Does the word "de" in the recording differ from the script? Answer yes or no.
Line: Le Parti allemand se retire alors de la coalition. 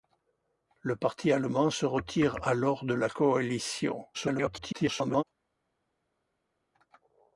no